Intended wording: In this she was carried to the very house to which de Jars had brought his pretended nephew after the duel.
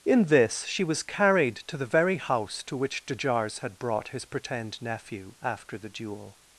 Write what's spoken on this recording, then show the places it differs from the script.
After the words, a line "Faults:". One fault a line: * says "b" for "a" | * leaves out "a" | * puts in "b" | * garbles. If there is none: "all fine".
In this she was carried to the very house to which de Jars had brought his pretend nephew after the duel.
Faults:
* says "pretend" for "pretended"